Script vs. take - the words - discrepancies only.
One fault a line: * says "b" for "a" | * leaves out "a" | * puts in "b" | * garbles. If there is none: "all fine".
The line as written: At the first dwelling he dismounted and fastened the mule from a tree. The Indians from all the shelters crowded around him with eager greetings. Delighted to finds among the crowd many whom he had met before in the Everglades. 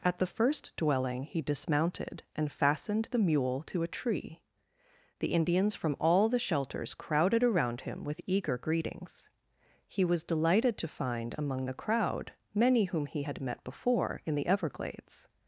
* says "to" for "from"
* puts in "He was"
* says "find" for "finds"